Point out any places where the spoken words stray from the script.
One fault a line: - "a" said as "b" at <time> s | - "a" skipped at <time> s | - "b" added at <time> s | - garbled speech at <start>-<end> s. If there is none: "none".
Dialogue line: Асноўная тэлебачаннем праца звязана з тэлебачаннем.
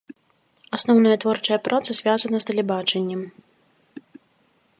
- "тэлебачаннем" said as "творчая" at 1.2 s